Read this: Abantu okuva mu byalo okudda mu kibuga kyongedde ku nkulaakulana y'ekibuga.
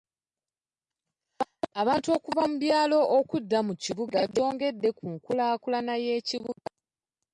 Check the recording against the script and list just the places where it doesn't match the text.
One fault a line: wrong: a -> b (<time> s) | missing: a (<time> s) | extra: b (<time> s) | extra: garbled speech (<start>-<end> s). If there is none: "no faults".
no faults